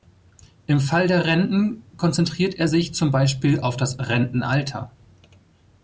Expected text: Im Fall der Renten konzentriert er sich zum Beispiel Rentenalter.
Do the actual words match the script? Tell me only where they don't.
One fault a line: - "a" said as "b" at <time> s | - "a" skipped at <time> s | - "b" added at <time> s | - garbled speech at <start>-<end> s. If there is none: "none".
- "auf das" added at 3.6 s